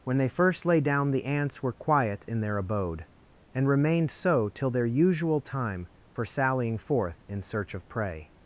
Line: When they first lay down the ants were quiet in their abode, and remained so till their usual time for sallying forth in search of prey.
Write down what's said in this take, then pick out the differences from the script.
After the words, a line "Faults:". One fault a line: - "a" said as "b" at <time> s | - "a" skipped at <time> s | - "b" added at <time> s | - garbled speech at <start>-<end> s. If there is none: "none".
When they first lay down the ants were quiet in their abode, and remained so till their usual time for sallying forth in search of prey.
Faults:
none